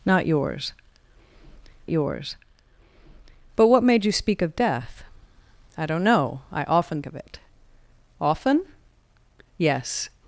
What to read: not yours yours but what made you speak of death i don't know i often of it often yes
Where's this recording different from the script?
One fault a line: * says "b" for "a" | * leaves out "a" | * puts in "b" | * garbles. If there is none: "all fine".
all fine